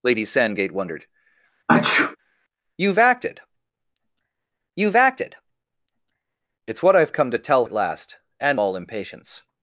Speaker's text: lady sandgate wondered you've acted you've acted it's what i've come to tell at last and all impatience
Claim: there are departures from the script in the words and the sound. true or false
true